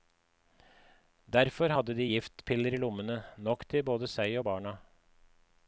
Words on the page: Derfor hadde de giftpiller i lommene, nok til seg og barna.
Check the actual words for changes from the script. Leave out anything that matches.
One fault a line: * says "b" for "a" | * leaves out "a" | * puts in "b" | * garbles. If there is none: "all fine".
* puts in "både"